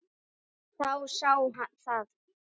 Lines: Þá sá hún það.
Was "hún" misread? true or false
true